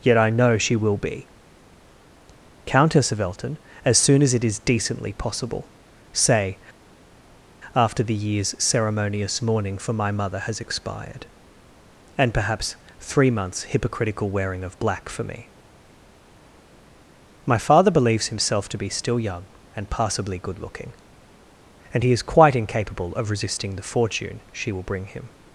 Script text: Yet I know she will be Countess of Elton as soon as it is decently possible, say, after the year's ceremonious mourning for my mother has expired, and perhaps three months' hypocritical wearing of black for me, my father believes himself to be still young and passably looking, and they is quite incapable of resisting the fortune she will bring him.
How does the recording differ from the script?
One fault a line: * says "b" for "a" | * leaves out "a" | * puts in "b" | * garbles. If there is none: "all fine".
* puts in "good"
* says "he" for "they"